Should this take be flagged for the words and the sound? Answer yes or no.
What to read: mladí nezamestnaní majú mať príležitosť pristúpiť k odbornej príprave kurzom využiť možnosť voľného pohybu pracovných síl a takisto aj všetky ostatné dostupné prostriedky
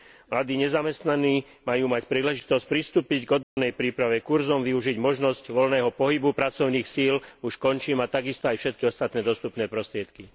yes